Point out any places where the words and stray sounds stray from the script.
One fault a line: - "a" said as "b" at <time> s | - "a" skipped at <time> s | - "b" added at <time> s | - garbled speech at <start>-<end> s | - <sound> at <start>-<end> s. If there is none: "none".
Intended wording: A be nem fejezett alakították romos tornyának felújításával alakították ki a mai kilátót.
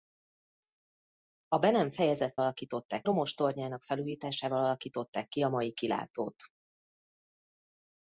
none